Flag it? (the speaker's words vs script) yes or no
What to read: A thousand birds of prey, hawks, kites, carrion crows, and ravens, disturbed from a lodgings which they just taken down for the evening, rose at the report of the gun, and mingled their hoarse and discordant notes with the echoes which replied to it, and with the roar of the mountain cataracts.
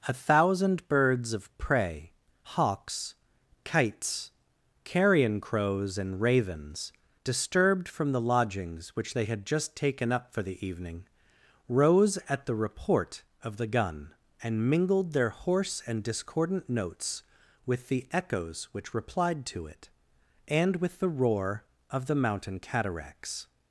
yes